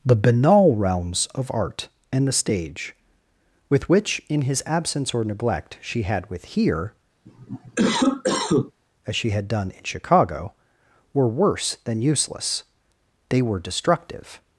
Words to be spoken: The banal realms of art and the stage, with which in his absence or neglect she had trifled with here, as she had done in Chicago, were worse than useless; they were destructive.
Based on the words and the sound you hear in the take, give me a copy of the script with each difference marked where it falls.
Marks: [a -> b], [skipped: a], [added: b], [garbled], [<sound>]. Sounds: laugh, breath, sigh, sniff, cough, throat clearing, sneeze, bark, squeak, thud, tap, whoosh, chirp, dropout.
The banal realms of art and the stage, with which in his absence or neglect she had [skipped: trifled] with here, [cough] as she had done in Chicago, were worse than useless; they were destructive.